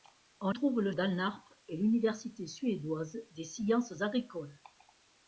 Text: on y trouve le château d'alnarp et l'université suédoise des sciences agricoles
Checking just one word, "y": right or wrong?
wrong